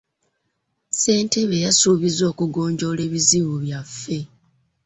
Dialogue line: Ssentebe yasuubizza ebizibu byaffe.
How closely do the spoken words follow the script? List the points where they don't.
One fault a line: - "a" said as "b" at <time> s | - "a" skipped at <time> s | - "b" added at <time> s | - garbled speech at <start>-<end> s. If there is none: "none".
- "okugonjoola" added at 2.3 s